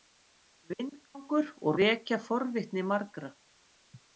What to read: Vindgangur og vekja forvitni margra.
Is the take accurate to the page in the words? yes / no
yes